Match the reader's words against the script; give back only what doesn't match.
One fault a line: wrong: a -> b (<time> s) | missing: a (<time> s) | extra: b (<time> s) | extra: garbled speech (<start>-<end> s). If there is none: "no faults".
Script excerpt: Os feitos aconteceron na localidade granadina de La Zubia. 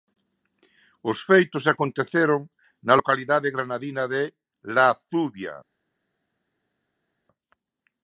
no faults